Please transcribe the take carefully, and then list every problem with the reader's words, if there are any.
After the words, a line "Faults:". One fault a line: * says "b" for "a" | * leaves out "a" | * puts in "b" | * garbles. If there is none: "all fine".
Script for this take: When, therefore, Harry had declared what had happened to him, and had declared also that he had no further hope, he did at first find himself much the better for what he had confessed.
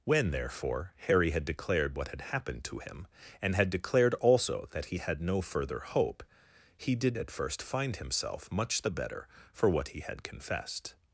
When, therefore, Harry had declared what had happened to him, and had declared also that he had no further hope, he did at first find himself much the better for what he had confessed.
Faults:
all fine